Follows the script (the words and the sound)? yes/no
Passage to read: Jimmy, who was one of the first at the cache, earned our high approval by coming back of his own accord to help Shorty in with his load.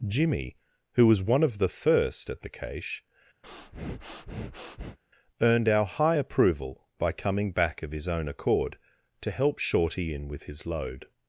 no